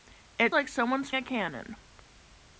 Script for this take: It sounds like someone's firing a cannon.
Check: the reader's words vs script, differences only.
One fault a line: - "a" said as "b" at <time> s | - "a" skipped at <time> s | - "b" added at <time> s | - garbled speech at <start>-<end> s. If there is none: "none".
- "sounds" skipped at 0.6 s
- "firing" skipped at 1.1 s